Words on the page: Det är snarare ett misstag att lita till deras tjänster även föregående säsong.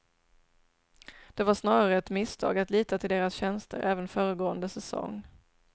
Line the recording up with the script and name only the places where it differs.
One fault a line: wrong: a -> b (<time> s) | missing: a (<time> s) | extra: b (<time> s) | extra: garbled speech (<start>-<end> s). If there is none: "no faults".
wrong: är -> var (1.4 s)